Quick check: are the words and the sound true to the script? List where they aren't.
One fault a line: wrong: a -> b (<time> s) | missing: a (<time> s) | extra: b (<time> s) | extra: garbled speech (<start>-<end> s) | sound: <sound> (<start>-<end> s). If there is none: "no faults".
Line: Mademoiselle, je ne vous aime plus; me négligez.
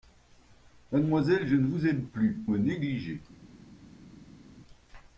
no faults